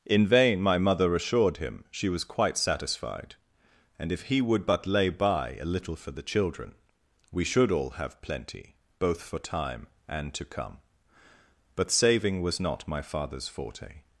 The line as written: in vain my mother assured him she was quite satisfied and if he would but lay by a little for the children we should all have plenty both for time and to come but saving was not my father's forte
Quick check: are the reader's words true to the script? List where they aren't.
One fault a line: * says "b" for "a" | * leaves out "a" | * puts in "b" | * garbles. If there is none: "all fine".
all fine